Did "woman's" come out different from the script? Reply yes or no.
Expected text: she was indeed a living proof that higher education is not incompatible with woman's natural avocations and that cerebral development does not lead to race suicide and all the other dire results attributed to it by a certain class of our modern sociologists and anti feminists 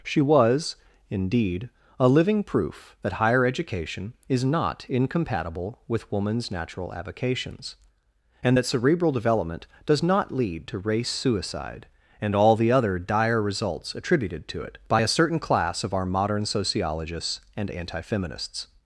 no